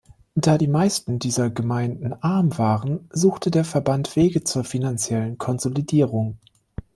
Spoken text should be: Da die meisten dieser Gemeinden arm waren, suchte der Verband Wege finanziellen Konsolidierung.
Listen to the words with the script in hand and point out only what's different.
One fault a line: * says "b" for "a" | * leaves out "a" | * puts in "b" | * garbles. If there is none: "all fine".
* puts in "zur"